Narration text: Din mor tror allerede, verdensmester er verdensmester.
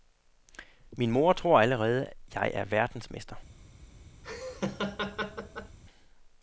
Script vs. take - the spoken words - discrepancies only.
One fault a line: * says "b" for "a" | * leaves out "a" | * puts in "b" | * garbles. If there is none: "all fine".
* says "Min" for "Din"
* says "jeg" for "verdensmester"